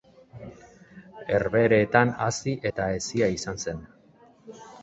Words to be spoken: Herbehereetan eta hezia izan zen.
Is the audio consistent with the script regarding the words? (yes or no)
no